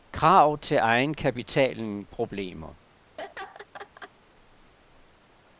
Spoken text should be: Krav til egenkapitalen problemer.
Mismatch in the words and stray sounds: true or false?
true